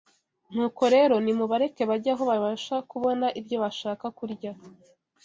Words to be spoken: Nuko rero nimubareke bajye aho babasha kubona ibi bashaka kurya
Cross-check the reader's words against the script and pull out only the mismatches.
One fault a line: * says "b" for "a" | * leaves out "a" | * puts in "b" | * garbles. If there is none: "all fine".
* says "ibyo" for "ibi"